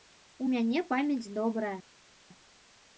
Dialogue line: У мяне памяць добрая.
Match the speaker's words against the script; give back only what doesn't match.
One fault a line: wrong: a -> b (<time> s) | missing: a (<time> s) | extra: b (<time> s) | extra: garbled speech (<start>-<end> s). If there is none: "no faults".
no faults